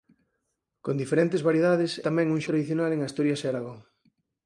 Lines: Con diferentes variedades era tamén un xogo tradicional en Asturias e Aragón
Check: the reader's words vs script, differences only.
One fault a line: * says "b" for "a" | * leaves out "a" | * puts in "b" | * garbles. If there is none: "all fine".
* leaves out "era"
* leaves out "xogo"